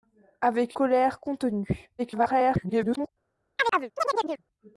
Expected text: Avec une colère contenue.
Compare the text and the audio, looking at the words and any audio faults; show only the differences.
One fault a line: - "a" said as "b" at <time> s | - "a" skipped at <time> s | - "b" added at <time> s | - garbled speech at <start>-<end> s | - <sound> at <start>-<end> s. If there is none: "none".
- "une" skipped at 0.8 s
- garbled speech at 2.0-3.1 s
- chirp at 3.6-4.4 s